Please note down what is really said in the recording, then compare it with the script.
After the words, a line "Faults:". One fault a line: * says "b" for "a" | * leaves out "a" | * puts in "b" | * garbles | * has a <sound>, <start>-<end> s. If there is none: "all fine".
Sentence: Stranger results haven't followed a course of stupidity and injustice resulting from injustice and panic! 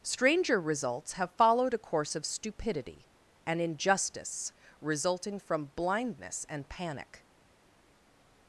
Stranger results have followed a course of stupidity and injustice resulting from blindness and panic!
Faults:
* says "have" for "haven't"
* says "blindness" for "injustice"